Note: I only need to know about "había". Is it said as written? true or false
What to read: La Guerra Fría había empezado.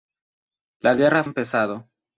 false